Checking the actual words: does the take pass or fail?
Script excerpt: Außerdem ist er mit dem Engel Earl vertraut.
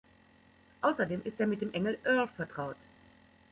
pass